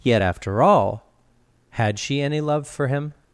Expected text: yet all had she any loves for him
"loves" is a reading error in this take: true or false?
true